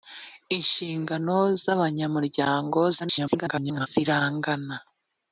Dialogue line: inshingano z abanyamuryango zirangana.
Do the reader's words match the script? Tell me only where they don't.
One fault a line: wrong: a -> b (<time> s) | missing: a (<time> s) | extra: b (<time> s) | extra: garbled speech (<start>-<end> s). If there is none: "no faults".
extra: garbled speech (3.0-3.9 s)